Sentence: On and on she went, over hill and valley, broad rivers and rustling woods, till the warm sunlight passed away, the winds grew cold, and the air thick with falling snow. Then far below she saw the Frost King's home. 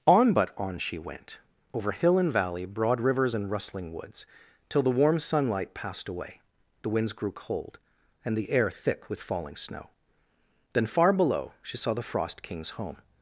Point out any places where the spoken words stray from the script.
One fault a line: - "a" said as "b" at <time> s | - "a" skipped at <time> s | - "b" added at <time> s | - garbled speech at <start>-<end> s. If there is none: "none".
- "and" said as "but" at 0.3 s